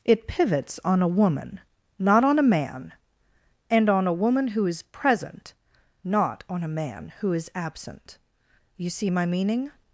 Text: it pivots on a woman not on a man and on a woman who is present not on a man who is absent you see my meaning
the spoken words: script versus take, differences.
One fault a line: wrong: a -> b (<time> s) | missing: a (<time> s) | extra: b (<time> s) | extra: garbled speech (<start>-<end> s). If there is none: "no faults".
no faults